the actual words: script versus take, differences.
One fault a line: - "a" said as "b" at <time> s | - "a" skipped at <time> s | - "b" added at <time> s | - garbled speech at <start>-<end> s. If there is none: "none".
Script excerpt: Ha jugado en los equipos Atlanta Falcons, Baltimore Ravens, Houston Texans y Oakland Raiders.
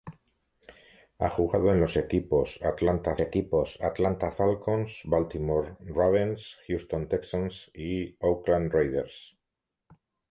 - "equipos Atlanta" added at 3.2 s